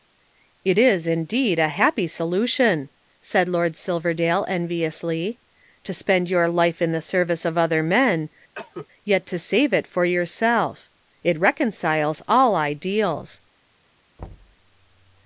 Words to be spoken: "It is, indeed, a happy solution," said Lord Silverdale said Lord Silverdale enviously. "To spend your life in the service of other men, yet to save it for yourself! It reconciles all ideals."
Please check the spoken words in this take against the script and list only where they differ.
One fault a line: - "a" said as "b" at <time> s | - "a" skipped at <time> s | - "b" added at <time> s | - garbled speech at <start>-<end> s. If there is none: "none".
- "said Lord Silverdale" skipped at 4.5 s